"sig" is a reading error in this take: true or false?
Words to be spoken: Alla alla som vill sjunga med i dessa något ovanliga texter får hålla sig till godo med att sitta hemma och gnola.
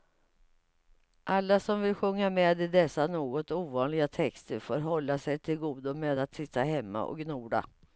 false